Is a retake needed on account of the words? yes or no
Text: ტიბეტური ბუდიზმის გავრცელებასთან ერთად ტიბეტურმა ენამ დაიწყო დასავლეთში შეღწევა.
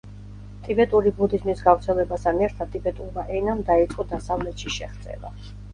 no